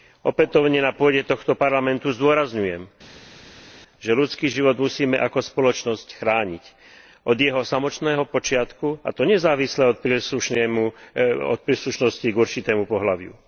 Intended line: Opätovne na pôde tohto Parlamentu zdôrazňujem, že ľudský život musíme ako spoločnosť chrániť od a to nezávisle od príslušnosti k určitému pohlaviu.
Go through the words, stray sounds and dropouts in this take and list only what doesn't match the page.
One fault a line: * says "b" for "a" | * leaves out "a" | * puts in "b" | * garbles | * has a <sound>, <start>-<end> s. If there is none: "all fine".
* puts in "jeho samotného počiatku"